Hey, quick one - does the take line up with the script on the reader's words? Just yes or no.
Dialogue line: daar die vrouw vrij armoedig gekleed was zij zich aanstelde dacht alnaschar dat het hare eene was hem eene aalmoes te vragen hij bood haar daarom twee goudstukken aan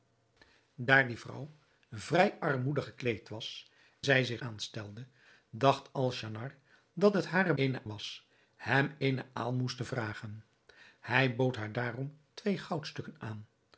yes